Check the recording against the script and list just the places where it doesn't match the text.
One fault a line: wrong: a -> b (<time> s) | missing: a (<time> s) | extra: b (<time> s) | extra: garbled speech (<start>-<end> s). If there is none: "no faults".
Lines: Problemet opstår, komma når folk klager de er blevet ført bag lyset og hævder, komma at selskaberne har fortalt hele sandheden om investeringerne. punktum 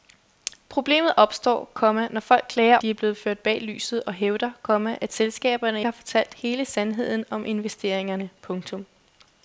no faults